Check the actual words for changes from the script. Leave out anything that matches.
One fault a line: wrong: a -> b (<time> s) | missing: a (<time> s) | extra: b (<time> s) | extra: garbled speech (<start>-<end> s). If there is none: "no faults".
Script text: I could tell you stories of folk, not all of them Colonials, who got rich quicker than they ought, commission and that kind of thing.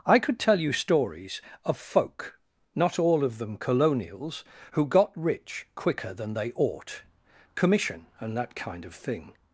no faults